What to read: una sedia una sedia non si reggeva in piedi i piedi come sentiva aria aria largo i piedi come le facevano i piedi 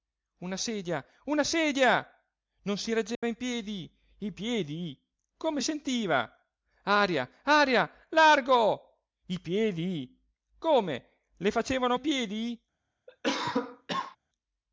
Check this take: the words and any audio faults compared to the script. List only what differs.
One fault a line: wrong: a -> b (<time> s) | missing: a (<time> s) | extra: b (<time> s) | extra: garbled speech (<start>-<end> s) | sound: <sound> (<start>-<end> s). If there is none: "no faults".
sound: dropout (3.1-3.2 s)
sound: cough (13.1-14.2 s)